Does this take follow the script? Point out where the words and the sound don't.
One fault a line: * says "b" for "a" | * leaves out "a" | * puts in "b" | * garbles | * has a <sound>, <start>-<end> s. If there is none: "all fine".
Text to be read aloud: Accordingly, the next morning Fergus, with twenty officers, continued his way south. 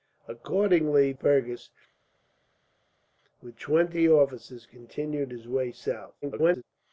* leaves out "the next morning"
* garbles